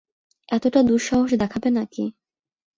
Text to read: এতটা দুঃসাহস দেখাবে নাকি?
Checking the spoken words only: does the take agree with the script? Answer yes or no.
yes